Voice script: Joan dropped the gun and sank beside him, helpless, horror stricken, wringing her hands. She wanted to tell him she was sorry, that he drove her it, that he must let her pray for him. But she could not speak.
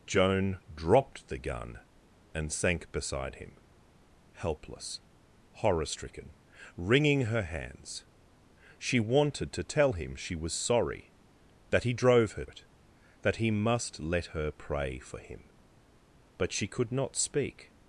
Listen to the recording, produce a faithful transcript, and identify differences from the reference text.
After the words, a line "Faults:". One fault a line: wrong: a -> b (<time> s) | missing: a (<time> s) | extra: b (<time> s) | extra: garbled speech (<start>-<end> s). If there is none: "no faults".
Joan dropped the gun and sank beside him, helpless, horror stricken, wringing her hands. She wanted to tell him she was sorry, that he drove her it, that he must let her pray for him. But she could not speak.
Faults:
no faults